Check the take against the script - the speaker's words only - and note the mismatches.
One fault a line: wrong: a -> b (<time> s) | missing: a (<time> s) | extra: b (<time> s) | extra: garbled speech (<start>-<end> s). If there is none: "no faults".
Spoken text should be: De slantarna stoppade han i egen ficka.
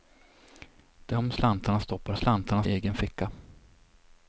wrong: han -> slantarna (2.1 s)